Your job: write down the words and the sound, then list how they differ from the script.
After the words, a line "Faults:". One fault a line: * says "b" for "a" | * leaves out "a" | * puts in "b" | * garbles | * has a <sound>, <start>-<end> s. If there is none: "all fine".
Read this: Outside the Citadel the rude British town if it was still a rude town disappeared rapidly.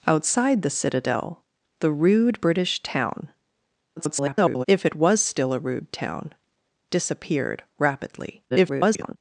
Outside the Citadel the rude British town [garbled] if it was still a rude town disappeared rapidly. [garbled]
Faults:
* garbles
* garbles